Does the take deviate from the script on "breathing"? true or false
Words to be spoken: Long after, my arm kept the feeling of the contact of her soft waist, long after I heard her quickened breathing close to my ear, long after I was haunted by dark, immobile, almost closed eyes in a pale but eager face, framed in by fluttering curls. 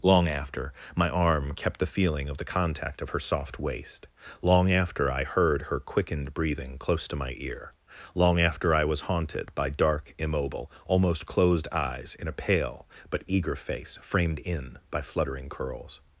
false